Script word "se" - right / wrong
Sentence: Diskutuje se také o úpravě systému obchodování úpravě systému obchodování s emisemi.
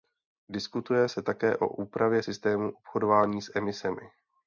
right